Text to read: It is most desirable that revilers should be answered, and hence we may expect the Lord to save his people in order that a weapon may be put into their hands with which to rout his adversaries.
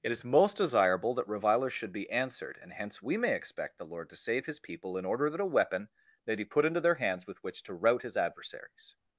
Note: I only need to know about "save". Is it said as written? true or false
true